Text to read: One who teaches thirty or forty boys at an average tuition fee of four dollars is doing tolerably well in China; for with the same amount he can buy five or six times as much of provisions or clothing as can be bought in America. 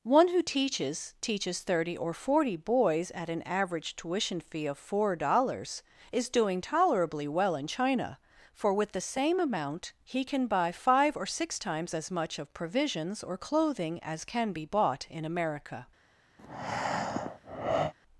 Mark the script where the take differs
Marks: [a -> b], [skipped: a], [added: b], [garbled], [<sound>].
One who teaches [added: teaches] thirty or forty boys at an average tuition fee of four dollars is doing tolerably well in China; for with the same amount he can buy five or six times as much of provisions or clothing as can be bought in America. [breath]